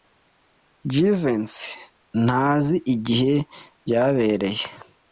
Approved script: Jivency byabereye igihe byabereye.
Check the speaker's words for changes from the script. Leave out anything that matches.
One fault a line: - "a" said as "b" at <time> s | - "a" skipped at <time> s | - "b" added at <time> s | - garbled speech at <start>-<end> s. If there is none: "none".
- "byabereye" said as "ntazi" at 2.2 s